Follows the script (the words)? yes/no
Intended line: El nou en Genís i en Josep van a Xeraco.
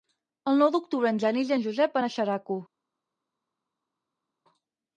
no